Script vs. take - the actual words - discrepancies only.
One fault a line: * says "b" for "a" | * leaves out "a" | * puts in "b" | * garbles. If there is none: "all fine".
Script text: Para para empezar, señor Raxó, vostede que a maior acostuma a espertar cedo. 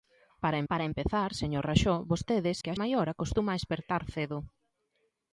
all fine